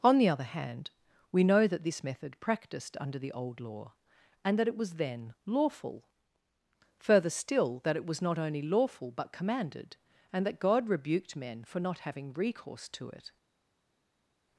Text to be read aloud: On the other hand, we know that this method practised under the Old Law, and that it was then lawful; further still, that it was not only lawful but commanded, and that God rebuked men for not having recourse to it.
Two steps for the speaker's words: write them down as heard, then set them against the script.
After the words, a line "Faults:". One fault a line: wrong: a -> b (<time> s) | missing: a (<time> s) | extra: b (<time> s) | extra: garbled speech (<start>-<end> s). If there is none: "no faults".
On the other hand, we know that this method practised under the Old Law, and that it was then lawful; further still, that it was not only lawful but commanded, and that God rebuked men for not having recourse to it.
Faults:
no faults